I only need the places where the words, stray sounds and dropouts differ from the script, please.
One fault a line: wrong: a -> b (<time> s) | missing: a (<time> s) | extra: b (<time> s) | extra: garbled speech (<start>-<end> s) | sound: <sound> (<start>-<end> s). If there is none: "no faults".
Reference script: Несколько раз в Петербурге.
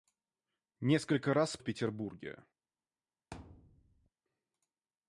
sound: thud (3.3-4.1 s)